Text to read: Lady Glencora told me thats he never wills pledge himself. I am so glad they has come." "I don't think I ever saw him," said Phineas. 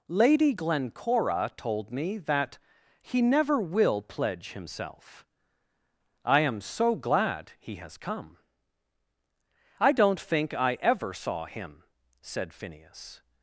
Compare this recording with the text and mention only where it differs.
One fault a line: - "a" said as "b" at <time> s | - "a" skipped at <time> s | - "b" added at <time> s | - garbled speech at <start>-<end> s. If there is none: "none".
- "thats" said as "that" at 2.2 s
- "wills" said as "will" at 3.6 s
- "they" said as "he" at 7.6 s